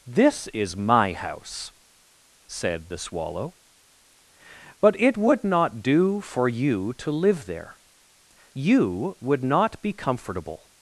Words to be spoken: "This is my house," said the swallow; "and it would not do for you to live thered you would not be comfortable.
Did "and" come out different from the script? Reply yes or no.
yes